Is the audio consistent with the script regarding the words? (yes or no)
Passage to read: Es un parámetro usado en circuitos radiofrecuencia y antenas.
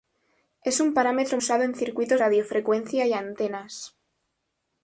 yes